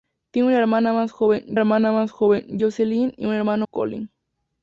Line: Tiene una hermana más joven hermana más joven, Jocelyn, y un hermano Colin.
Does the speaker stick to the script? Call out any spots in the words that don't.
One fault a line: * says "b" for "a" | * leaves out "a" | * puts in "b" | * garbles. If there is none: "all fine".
all fine